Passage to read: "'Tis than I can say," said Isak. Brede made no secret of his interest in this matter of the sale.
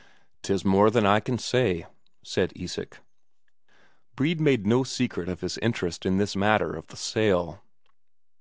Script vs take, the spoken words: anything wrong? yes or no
yes